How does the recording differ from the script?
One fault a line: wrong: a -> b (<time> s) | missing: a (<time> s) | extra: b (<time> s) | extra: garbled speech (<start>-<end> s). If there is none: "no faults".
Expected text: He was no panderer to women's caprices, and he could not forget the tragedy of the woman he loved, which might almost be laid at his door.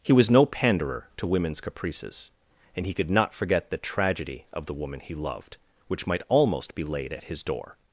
no faults